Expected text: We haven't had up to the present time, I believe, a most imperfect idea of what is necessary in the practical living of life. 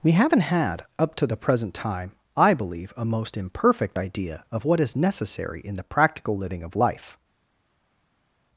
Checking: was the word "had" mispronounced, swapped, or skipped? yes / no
no